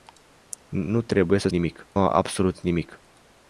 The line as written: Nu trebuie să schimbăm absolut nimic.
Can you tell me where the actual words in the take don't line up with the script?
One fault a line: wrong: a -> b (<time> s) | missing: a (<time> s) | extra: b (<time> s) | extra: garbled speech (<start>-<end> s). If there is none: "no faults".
wrong: schimbăm -> nimic (1.5 s)